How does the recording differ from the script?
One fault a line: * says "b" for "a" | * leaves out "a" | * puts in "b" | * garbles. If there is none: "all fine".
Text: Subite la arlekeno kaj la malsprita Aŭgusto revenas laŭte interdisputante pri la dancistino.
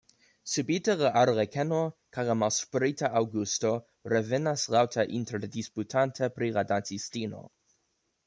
all fine